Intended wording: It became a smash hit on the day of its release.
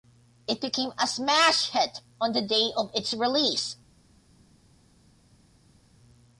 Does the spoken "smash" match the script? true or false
true